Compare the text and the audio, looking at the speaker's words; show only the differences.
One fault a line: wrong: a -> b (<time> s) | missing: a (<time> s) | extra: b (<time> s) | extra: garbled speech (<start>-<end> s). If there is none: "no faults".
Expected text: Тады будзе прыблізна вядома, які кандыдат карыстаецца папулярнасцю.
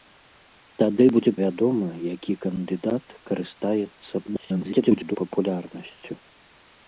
missing: прыблізна (1.3 s)
extra: garbled speech (4.3-5.2 s)